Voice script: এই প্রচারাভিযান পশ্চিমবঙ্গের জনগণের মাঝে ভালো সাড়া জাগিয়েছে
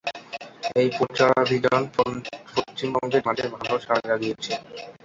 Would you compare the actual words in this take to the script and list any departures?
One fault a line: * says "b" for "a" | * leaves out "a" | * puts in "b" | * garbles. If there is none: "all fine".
* leaves out "জনগণের"